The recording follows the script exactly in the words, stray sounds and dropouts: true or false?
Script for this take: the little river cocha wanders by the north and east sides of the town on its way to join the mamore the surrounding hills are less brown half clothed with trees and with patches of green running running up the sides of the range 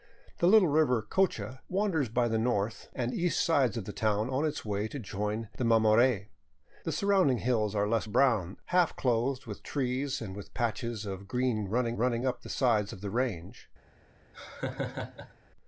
false